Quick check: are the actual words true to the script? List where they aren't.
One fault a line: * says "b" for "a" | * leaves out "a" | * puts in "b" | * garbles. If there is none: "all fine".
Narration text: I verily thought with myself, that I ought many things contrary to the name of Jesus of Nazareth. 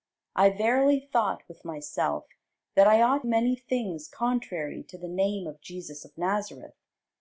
all fine